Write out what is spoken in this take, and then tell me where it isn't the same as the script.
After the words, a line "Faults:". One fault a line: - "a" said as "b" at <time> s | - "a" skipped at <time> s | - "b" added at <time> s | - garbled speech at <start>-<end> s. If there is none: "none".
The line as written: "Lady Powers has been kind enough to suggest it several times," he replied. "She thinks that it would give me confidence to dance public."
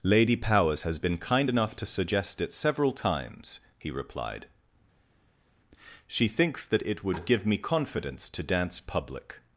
"Lady Powers has been kind enough to suggest it several times," he replied. "She thinks that it would give me confidence to dance public."
Faults:
none